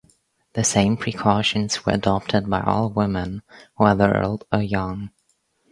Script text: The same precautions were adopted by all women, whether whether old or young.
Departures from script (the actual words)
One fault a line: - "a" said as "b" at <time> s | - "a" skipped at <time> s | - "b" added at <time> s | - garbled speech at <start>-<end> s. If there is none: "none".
- "whether" skipped at 4.2 s